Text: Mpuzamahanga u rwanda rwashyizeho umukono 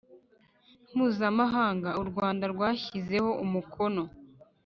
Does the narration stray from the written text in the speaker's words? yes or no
no